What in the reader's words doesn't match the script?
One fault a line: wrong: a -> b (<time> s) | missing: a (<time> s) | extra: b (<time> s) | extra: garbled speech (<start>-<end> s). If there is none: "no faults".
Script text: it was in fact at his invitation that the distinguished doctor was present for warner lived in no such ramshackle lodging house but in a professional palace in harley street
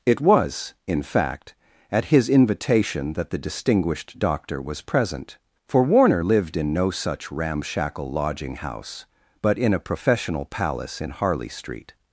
no faults